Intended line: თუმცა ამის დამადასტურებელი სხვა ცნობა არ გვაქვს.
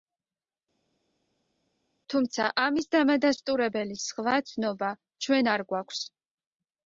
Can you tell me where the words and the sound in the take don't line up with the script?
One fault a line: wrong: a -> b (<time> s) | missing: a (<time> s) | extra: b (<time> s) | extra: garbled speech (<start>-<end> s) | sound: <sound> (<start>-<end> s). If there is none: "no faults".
extra: ჩვენ (5.3 s)